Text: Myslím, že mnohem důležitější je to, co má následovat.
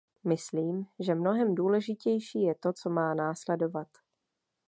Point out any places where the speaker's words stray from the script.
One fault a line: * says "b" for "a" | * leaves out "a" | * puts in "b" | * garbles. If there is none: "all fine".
all fine